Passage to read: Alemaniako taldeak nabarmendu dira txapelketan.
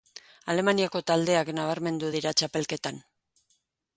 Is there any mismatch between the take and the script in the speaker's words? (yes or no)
no